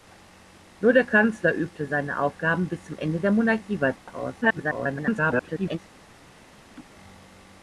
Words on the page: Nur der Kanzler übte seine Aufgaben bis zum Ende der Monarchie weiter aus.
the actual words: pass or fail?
fail